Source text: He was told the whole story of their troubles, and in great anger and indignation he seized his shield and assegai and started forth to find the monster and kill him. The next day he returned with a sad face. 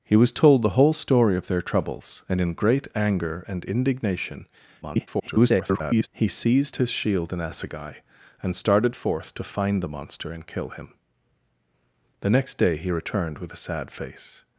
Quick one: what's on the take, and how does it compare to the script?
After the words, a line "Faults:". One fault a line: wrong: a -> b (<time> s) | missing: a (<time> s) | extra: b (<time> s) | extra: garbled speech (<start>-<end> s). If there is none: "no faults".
He was told the whole story of their troubles, and in great anger and indignation [garbled] he seized his shield and assegai and started forth to find the monster and kill him. The next day he returned with a sad face.
Faults:
extra: garbled speech (4.8-6.1 s)